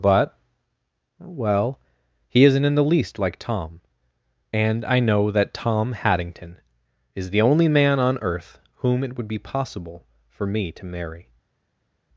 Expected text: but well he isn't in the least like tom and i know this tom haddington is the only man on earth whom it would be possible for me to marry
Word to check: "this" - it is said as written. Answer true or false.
false